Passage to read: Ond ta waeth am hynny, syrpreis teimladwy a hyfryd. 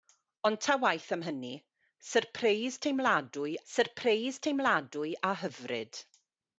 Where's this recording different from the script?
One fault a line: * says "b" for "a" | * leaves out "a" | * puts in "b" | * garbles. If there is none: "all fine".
* puts in "syrpreis teimladwy"